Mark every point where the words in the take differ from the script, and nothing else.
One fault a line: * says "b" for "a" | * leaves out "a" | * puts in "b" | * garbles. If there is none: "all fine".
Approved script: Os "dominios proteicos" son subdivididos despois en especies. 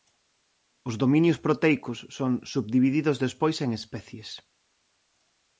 all fine